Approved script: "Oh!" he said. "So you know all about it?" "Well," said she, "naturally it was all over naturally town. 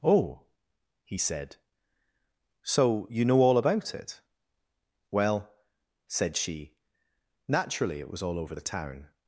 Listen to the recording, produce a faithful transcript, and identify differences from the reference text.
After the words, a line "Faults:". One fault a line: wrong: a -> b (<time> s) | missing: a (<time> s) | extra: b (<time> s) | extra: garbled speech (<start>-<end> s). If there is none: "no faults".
"Oh!" he said. "So you know all about it?" "Well," said she, "naturally it was all over the town.
Faults:
wrong: naturally -> the (8.5 s)